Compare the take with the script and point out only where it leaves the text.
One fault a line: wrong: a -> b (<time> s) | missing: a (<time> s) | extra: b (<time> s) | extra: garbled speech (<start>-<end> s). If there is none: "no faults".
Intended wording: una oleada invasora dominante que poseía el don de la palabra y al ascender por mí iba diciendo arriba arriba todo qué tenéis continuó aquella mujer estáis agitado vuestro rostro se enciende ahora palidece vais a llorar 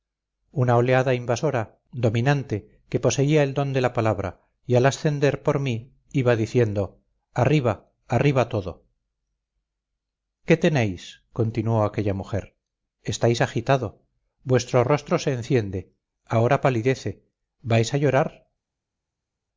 no faults